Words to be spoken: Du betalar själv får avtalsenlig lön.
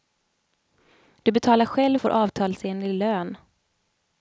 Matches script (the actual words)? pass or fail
pass